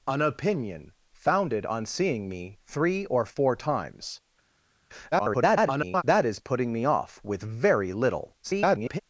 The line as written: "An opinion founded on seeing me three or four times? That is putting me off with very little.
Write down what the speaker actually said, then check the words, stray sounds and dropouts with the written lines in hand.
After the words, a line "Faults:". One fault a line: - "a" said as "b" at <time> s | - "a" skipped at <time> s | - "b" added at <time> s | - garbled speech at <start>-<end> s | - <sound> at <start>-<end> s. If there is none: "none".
"An opinion founded on seeing me three or four times? [garbled] That is putting me off with very little. [garbled]
Faults:
- garbled speech at 5.1-6.0 s
- garbled speech at 8.4-9.0 s